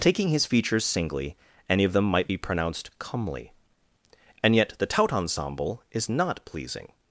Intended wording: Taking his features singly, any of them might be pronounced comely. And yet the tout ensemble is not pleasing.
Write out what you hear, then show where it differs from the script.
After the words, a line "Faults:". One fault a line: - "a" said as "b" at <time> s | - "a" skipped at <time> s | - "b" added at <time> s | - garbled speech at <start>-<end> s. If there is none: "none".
Taking his features singly, any of them might be pronounced comely. And yet the tout ensemble is not pleasing.
Faults:
none